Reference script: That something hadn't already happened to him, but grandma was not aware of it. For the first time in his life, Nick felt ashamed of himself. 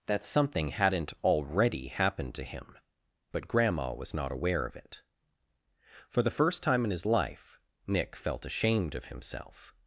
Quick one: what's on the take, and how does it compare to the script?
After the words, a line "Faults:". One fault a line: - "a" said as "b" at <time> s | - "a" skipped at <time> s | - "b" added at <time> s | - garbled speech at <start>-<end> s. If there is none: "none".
That something hadn't already happened to him, but grandma was not aware of it. For the first time in his life, Nick felt ashamed of himself.
Faults:
none